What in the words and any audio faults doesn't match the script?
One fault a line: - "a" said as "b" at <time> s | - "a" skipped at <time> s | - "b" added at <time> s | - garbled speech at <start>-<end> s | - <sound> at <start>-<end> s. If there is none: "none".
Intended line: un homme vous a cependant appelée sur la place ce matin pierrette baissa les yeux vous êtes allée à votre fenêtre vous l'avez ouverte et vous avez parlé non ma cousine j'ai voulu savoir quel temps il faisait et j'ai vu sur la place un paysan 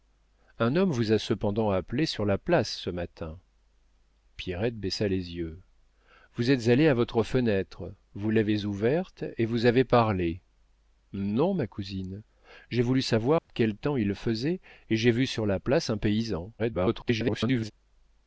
- dropout at 13.4-13.5 s
- garbled speech at 16.6-17.7 s